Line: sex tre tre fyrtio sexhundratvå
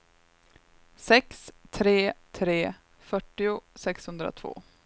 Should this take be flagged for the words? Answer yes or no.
no